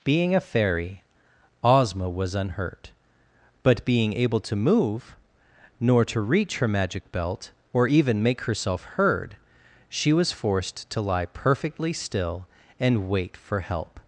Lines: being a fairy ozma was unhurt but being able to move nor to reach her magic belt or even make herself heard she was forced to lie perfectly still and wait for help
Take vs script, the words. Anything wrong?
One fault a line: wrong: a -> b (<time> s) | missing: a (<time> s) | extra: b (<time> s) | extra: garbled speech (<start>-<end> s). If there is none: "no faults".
no faults